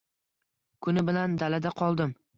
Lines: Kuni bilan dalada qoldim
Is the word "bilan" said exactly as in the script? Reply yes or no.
yes